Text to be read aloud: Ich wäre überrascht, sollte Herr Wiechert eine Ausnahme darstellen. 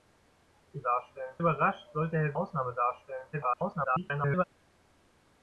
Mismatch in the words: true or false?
true